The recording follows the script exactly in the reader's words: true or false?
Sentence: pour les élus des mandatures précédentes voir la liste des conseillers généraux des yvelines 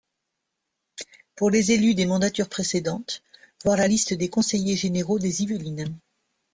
true